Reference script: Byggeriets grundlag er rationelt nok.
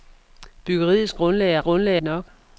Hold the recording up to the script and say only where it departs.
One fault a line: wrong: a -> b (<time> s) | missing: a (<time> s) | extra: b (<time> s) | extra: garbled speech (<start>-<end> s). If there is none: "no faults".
wrong: rationelt -> grundlag (1.6 s)